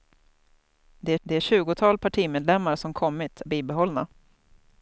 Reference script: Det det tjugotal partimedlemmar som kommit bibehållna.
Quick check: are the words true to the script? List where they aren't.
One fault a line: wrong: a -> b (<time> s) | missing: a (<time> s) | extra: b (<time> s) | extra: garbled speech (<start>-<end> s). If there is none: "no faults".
no faults